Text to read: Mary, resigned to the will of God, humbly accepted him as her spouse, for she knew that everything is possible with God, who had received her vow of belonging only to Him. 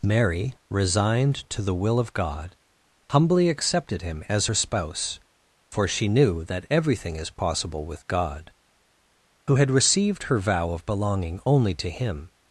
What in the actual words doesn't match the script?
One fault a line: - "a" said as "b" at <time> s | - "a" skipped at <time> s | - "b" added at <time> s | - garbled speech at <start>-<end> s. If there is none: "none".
none